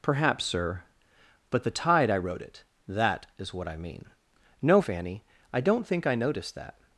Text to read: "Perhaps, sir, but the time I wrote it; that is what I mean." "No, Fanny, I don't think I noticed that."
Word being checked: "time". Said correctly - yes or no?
no